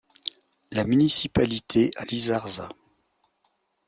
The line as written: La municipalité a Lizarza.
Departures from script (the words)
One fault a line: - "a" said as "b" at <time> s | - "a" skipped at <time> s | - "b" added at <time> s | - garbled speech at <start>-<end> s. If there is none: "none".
none